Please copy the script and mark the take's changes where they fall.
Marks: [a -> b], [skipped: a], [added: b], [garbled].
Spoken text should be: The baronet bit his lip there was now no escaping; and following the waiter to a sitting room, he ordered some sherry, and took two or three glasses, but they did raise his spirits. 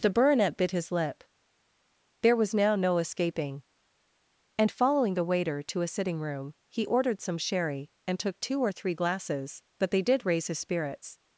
The baronet bit his lip there was now no escaping; and following the waiter to a sitting room, he ordered some sherry, and took two or three glasses, but they did raise his spirits.